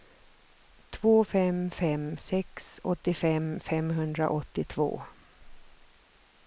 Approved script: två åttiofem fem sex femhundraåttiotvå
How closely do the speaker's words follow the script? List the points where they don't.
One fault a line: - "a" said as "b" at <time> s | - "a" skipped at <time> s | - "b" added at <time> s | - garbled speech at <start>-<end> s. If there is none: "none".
- "åttiofem" said as "fem" at 1.2 s
- "åttiofem" added at 2.8 s